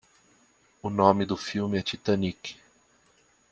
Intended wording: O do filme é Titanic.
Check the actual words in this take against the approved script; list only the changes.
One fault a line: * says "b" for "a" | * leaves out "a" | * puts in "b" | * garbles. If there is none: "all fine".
* puts in "nome"